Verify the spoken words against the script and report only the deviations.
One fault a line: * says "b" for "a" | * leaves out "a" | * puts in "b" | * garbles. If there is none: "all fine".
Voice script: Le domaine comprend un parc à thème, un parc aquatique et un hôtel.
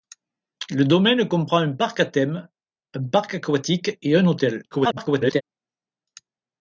* garbles